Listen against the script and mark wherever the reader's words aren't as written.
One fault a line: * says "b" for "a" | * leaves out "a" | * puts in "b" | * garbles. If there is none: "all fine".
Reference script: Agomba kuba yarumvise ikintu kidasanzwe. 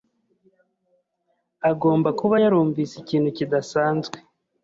all fine